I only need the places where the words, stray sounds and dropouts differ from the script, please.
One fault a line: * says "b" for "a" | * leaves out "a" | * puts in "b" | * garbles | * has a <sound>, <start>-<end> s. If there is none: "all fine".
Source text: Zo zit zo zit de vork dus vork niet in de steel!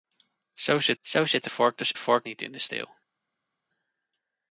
all fine